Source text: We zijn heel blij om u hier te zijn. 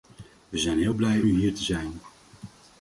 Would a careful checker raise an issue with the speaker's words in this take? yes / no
yes